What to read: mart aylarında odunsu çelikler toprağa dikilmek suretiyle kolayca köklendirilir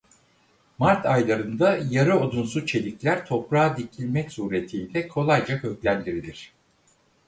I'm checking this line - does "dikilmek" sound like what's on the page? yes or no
yes